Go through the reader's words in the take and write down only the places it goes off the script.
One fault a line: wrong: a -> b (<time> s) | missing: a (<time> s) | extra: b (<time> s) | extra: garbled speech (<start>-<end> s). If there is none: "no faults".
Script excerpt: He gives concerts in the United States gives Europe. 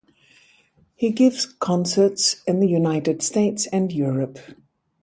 wrong: gives -> and (3.7 s)